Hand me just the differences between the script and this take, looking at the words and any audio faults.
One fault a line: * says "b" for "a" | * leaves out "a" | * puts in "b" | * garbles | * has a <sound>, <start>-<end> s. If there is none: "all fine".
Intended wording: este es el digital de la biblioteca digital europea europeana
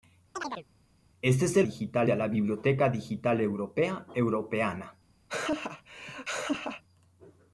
* has a chirp, 0.3-0.7 s
* has a laugh, 5.3-6.8 s